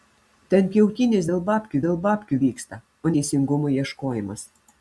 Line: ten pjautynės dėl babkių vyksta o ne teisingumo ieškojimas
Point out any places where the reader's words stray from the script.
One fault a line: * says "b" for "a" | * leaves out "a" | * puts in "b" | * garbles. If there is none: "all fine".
* puts in "dėl babkių"
* leaves out "ne"